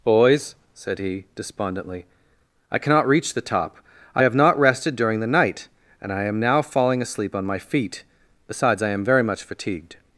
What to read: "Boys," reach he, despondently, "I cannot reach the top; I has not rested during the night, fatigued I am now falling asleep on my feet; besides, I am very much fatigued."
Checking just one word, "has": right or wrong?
wrong